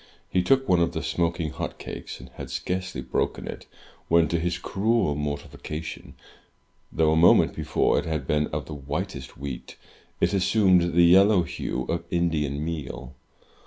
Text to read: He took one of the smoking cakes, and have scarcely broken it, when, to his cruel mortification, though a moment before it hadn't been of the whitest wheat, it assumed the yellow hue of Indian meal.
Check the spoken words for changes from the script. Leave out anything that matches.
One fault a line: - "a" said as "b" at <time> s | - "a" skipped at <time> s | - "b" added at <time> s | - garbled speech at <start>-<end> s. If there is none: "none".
- "hot" added at 1.5 s
- "have" said as "had" at 2.3 s
- "hadn't" said as "had" at 8.1 s